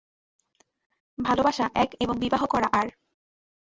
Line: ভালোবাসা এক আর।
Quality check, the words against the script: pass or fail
fail